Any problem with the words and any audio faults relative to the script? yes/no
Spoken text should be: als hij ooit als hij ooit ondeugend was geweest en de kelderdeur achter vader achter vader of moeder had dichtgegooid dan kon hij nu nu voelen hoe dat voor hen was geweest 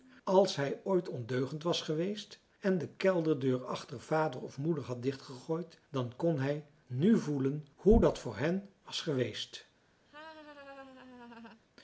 yes